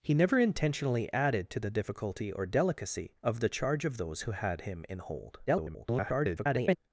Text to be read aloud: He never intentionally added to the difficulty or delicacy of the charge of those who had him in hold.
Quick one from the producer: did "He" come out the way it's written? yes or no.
yes